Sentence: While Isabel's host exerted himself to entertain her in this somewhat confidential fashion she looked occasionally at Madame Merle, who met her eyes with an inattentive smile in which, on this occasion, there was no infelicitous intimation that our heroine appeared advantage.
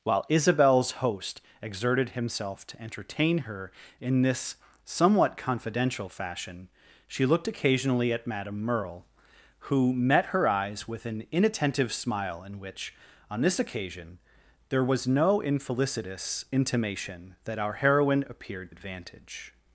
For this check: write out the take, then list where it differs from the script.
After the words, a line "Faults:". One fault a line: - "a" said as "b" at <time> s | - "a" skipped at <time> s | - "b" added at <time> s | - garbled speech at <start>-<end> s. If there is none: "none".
While Isabel's host exerted himself to entertain her in this somewhat confidential fashion she looked occasionally at Madame Merle, who met her eyes with an inattentive smile in which, on this occasion, there was no infelicitous intimation that our heroine appeared advantage.
Faults:
none